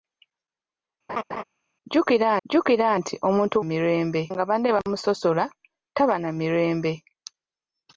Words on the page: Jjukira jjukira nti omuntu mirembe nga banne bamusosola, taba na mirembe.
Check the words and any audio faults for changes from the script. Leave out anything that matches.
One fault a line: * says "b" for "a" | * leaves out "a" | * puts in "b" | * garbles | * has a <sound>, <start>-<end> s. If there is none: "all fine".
* has a laugh, 1.1-1.4 s